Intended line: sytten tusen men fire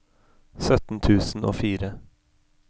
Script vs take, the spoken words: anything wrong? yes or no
yes